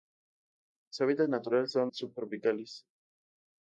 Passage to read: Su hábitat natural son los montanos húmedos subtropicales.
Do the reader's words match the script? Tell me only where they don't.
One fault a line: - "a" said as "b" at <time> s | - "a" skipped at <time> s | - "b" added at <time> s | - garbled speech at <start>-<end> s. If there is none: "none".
- "los montanos húmedos" skipped at 1.9 s